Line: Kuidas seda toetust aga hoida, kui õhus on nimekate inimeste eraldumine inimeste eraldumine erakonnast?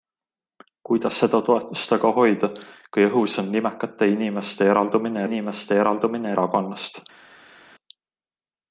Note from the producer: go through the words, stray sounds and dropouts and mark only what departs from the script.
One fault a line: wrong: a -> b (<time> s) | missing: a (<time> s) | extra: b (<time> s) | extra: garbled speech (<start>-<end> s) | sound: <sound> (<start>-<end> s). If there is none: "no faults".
no faults